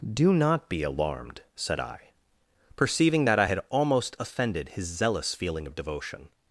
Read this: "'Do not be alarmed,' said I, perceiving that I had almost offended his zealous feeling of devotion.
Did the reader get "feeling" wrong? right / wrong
right